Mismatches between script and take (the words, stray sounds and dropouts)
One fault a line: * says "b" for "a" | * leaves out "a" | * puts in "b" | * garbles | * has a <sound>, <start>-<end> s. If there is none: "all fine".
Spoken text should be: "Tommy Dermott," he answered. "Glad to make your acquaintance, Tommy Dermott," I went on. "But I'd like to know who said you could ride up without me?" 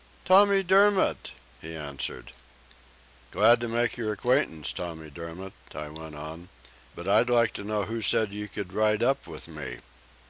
* says "with" for "without"